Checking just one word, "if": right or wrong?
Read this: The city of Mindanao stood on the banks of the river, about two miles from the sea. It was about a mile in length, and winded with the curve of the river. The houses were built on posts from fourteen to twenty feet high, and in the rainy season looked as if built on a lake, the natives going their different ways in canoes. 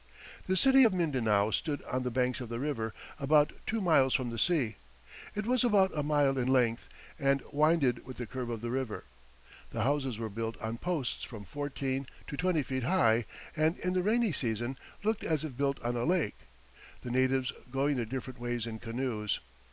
right